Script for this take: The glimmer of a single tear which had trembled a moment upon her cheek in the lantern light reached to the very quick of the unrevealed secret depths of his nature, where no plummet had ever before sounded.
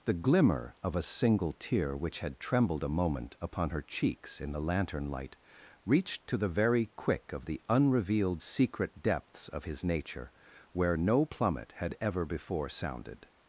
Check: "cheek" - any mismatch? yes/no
yes